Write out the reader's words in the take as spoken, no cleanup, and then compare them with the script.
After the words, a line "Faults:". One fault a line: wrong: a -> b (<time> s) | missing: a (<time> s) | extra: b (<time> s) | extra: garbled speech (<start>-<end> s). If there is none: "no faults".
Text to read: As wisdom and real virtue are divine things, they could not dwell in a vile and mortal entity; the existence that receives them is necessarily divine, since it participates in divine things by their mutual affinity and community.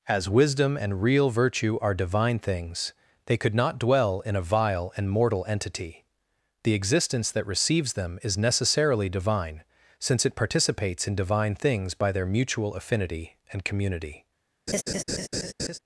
As wisdom and real virtue are divine things, they could not dwell in a vile and mortal entity; the existence that receives them is necessarily divine, since it participates in divine things by their mutual affinity and community.
Faults:
no faults